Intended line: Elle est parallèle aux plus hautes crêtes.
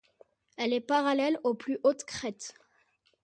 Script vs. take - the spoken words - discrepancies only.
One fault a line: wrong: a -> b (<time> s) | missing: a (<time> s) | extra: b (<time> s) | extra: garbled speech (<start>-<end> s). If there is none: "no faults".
no faults